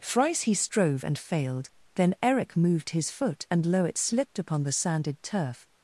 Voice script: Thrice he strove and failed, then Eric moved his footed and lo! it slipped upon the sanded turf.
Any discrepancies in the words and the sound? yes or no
yes